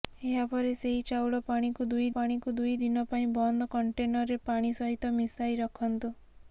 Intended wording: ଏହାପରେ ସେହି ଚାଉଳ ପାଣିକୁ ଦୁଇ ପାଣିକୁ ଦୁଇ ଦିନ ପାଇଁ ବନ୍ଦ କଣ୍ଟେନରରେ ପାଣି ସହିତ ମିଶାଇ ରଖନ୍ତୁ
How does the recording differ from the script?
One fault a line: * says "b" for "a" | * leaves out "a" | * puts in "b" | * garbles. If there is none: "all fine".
all fine